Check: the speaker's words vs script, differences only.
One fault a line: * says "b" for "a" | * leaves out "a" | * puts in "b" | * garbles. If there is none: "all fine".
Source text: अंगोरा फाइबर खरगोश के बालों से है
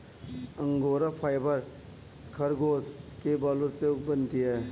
* puts in "बनती"